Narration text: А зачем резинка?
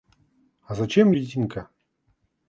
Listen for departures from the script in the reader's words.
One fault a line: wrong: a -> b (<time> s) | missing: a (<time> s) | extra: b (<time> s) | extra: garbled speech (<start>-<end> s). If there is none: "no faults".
no faults